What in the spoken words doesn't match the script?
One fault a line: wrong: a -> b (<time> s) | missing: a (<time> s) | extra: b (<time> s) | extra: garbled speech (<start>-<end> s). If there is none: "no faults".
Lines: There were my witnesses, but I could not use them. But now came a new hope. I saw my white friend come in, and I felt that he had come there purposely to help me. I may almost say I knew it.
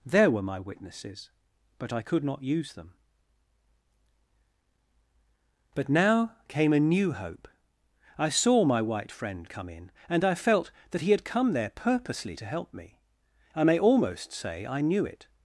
no faults